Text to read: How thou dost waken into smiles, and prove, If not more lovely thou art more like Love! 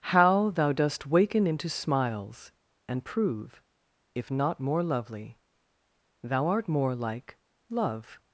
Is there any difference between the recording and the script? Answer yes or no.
no